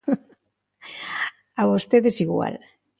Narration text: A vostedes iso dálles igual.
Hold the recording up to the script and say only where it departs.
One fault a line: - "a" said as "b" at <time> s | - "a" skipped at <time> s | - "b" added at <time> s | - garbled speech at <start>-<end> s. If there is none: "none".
- "iso dálles" skipped at 2.1 s